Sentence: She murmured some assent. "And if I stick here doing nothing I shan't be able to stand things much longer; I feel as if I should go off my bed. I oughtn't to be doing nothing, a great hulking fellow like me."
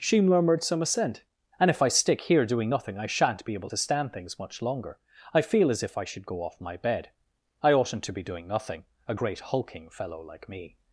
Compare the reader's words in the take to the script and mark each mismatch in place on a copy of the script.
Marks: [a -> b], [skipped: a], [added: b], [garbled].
She murmured some assent. "And if I stick here doing nothing I shan't be able to stand things much longer; I feel as if I should go off my bed. I oughtn't to be doing nothing, a great hulking fellow like me."